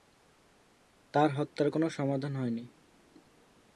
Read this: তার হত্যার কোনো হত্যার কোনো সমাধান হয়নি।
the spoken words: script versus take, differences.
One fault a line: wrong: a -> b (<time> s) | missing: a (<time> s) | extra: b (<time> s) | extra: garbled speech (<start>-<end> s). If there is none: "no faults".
missing: হত্যার কোনো (1.9 s)